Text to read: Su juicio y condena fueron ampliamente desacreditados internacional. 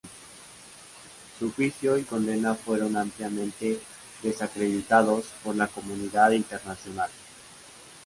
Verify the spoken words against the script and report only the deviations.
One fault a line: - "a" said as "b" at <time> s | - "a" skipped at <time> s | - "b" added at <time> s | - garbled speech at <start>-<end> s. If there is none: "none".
- "por la comunidad" added at 5.4 s